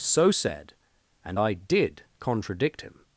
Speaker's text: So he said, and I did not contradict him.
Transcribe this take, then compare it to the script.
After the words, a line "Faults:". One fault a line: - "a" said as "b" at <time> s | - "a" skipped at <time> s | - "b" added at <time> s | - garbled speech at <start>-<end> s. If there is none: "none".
So said, and I did contradict him.
Faults:
- "he" skipped at 0.3 s
- "not" skipped at 2.0 s